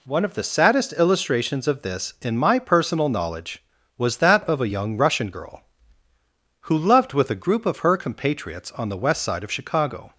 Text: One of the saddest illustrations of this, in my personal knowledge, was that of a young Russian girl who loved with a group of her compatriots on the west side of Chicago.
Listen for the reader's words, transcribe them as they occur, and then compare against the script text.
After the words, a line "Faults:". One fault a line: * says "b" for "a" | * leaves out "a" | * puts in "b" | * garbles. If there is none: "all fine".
One of the saddest illustrations of this, in my personal knowledge, was that of a young Russian girl who loved with a group of her compatriots on the west side of Chicago.
Faults:
all fine